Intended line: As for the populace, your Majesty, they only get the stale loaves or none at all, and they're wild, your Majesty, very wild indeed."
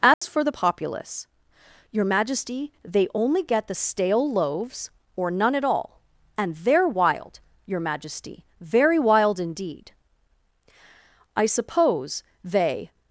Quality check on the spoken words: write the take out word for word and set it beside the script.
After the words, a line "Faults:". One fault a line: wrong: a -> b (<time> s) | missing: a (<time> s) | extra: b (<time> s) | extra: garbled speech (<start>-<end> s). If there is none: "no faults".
As for the populace, your Majesty, they only get the stale loaves or none at all, and they're wild, your Majesty, very wild indeed." "I suppose they
Faults:
extra: I suppose they (11.3 s)